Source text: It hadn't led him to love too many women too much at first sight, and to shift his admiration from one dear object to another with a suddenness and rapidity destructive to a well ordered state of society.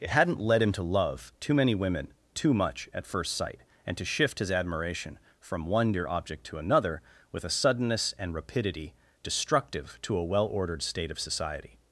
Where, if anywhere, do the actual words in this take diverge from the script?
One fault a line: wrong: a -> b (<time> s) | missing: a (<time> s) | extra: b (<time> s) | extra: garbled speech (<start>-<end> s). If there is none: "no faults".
no faults